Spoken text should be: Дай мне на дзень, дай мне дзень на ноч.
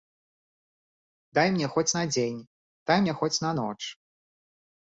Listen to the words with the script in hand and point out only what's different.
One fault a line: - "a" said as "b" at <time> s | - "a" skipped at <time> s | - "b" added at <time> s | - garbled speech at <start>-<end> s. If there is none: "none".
- "хоць" added at 1.8 s
- "дзень" said as "хоць" at 3.2 s